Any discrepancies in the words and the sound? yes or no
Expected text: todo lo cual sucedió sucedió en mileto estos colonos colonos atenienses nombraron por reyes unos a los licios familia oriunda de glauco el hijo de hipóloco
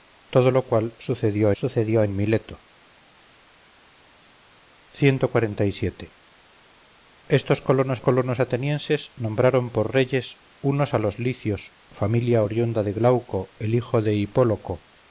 no